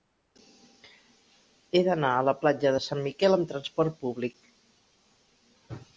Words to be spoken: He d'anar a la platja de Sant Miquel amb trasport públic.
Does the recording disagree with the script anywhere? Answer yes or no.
no